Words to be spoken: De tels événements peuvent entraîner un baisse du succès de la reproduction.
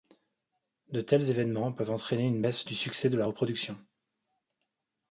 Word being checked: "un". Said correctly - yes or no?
no